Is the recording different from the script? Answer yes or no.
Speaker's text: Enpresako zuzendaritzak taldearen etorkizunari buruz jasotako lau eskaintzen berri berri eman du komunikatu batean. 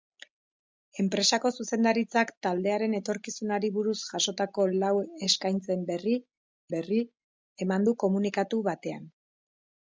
no